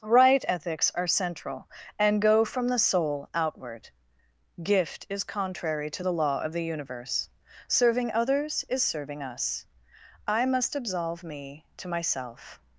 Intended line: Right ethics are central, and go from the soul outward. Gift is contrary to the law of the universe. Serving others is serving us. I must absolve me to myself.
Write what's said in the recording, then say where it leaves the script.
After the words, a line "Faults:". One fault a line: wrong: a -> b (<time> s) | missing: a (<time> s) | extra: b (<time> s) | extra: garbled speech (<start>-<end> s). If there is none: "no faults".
Right ethics are central, and go from the soul outward. Gift is contrary to the law of the universe. Serving others is serving us. I must absolve me to myself.
Faults:
no faults